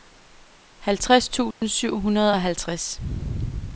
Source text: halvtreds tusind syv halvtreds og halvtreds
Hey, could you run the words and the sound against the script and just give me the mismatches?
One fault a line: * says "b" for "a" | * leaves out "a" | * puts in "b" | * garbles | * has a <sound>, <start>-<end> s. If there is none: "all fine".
* has a dropout, 1.5-1.6 s
* says "hundrede" for "halvtreds"